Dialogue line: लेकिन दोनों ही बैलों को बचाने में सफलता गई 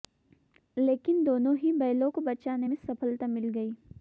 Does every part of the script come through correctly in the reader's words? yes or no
no